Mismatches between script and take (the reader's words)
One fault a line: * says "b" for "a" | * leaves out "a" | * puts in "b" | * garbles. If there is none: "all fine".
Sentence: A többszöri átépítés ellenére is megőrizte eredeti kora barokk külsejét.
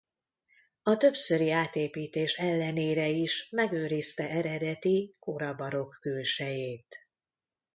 all fine